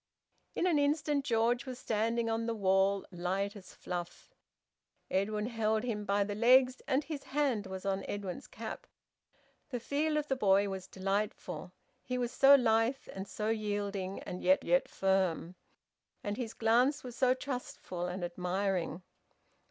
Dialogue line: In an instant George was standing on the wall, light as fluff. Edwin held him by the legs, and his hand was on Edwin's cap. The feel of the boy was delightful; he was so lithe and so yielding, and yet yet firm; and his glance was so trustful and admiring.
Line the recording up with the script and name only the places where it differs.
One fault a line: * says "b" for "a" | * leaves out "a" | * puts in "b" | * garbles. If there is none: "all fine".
all fine